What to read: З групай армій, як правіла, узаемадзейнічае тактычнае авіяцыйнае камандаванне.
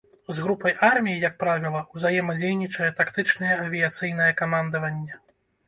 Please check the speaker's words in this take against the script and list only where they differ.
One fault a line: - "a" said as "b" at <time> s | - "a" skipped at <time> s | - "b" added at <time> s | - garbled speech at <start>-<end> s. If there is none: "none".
none